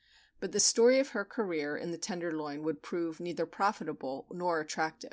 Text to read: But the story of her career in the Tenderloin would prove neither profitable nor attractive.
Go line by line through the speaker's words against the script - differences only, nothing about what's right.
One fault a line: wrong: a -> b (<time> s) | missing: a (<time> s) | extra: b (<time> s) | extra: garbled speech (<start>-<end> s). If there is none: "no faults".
no faults